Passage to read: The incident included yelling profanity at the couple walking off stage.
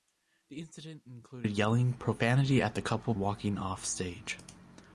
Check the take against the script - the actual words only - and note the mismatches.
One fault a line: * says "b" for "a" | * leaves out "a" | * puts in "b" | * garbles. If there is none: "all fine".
all fine